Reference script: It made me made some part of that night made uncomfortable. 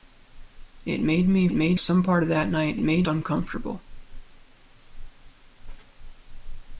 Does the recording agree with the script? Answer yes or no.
yes